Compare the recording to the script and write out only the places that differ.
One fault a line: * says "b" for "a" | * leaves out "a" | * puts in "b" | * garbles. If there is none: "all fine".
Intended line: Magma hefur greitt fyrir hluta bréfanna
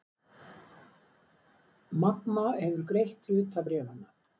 * leaves out "fyrir"